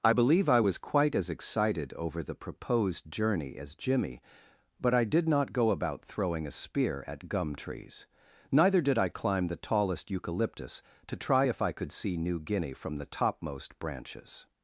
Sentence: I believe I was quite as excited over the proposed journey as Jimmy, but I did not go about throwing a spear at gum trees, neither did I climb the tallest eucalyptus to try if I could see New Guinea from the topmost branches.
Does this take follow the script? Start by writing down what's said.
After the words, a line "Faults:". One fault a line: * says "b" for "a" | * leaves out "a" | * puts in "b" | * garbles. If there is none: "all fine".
I believe I was quite as excited over the proposed journey as Jimmy, but I did not go about throwing a spear at gum trees, neither did I climb the tallest eucalyptus to try if I could see New Guinea from the topmost branches.
Faults:
all fine